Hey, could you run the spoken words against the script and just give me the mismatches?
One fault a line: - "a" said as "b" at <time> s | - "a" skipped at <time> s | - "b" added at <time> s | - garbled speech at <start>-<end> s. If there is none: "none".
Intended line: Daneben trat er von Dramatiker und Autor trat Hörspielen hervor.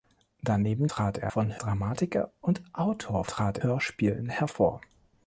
none